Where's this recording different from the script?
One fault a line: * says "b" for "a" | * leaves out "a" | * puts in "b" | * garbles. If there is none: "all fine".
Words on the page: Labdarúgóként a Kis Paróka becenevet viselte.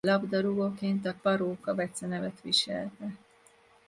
* leaves out "Kis"